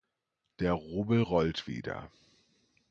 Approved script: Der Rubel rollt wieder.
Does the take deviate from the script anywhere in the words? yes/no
no